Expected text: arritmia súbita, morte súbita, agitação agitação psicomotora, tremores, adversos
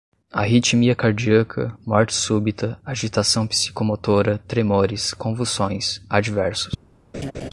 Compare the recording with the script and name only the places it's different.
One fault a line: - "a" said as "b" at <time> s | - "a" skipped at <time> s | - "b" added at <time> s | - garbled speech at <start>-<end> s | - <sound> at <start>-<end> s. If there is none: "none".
- "súbita" said as "cardíaca" at 0.9 s
- "agitação" skipped at 3.5 s
- "convulsões" added at 5.1 s
- laugh at 7.1-7.5 s